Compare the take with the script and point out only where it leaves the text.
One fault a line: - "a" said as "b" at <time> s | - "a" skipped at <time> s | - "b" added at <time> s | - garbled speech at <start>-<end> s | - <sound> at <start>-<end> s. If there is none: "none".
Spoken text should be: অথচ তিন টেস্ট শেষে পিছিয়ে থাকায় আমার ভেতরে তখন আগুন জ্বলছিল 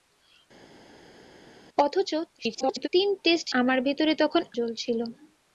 - garbled speech at 2.4-2.9 s
- "শেষে পিছিয়ে থাকায়" skipped at 3.5 s
- "আগুন" skipped at 4.4 s